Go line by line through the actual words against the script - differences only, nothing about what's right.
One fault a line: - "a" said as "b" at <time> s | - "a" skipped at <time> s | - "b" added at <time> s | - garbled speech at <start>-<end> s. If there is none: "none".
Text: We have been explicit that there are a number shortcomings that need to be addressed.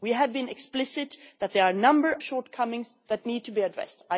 none